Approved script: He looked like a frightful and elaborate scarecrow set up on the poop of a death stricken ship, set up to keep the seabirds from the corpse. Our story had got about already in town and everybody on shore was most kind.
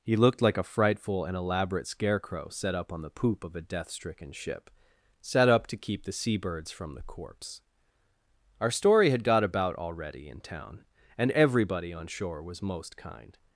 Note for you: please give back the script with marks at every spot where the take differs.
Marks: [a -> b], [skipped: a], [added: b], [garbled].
He looked like a frightful and elaborate scarecrow set up on the poop of a death stricken ship, set up to keep the seabirds from the corpse. Our story had got about already in town and everybody on shore was most kind.